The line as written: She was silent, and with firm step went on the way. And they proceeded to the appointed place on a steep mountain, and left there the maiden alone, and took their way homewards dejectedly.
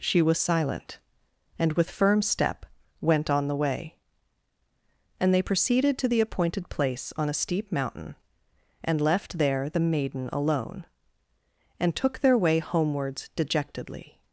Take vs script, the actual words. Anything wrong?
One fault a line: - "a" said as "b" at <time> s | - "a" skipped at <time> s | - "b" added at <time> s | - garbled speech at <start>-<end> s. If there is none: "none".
none